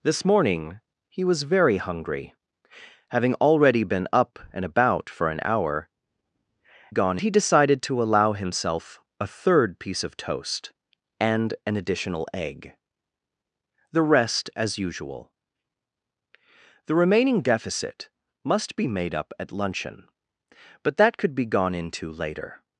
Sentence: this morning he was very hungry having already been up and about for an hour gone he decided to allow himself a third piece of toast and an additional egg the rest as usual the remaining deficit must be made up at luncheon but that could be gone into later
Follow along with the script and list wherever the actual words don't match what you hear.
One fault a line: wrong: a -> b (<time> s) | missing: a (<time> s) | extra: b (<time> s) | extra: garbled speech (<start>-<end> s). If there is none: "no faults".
no faults